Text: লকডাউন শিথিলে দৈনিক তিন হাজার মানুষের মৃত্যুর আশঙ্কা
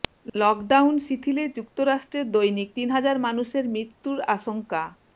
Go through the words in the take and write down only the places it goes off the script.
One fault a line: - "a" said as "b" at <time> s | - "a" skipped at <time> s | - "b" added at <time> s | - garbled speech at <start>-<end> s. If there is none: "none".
- "যুক্তরাষ্ট্রে" added at 1.6 s